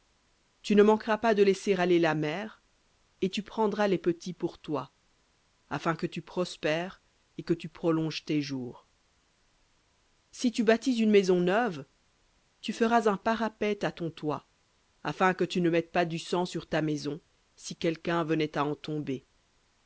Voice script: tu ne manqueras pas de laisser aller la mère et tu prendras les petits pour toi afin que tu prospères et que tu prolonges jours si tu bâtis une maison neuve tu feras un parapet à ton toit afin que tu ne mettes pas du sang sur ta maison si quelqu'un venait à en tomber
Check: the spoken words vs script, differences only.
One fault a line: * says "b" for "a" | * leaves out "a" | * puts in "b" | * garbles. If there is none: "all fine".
* puts in "tes"